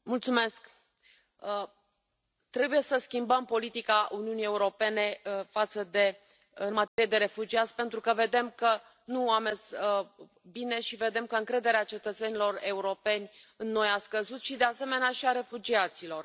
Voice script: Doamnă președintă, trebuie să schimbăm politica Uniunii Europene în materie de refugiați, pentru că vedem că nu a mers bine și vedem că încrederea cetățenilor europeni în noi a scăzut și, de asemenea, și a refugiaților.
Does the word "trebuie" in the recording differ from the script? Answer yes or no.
no